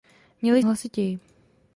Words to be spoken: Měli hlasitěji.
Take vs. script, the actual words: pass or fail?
pass